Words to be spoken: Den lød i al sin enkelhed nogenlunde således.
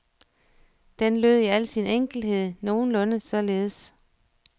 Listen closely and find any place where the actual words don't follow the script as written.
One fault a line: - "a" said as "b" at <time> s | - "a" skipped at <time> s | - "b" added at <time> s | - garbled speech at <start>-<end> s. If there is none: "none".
none